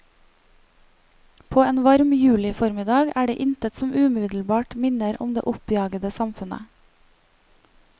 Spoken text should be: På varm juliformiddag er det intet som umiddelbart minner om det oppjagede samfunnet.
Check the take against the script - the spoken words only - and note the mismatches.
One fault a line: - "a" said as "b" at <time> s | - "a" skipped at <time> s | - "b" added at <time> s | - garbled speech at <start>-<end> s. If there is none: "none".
- "en" added at 1.6 s